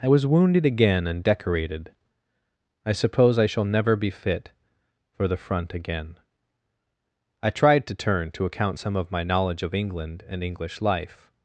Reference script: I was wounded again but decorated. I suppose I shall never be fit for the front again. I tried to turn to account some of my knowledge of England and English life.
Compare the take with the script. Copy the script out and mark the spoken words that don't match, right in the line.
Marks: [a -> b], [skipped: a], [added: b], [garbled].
I was wounded again [but -> and] decorated. I suppose I shall never be fit for the front again. I tried to turn to account some of my knowledge of England and English life.